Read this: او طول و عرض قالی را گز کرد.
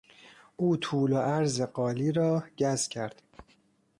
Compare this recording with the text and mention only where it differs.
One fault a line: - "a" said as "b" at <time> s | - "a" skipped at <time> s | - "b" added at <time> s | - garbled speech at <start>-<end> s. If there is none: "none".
none